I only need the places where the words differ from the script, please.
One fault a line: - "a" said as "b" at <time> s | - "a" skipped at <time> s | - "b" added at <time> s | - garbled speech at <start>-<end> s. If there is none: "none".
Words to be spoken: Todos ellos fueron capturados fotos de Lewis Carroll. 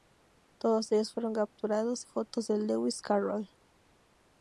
none